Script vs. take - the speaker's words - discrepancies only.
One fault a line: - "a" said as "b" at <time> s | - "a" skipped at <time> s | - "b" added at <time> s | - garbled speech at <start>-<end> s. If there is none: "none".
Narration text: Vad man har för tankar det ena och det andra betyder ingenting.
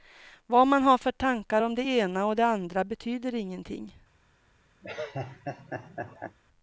- "om" added at 1.6 s